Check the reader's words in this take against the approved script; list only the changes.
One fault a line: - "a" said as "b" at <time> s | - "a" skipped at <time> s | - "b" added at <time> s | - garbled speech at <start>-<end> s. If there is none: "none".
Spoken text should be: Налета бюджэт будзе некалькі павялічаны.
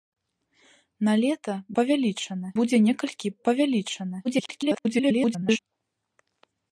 - "бюджэт" said as "павялічаны" at 1.8 s
- garbled speech at 4.2-5.6 s